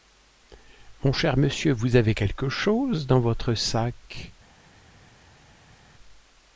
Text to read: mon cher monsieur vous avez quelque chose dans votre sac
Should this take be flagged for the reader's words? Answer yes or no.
no